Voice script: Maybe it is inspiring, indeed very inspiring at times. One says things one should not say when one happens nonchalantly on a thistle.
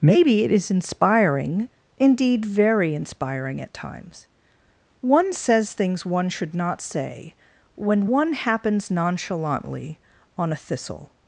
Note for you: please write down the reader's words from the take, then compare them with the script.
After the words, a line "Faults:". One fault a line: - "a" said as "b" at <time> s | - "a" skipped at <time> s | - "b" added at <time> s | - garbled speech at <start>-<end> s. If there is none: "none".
Maybe it is inspiring, indeed very inspiring at times. One says things one should not say when one happens nonchalantly on a thistle.
Faults:
none